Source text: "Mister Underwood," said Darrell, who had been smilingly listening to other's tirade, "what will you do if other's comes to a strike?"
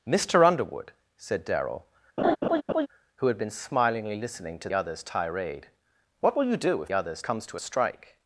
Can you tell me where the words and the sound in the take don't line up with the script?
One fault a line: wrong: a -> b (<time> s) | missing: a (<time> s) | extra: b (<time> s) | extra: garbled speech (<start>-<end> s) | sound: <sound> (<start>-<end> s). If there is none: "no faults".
sound: laugh (2.2-2.9 s)